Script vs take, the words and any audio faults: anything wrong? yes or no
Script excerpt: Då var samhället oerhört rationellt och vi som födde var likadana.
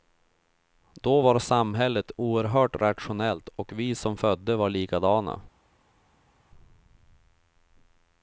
no